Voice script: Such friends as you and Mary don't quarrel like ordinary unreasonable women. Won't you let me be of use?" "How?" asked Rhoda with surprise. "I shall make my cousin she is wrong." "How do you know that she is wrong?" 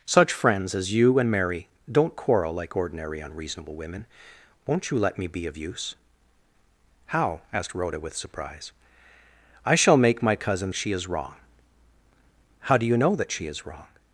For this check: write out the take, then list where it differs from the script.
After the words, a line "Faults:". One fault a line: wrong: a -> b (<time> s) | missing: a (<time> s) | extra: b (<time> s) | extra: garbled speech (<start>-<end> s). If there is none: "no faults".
Such friends as you and Mary don't quarrel like ordinary unreasonable women. Won't you let me be of use?" "How?" asked Rhoda with surprise. "I shall make my cousin she is wrong." "How do you know that she is wrong?"
Faults:
no faults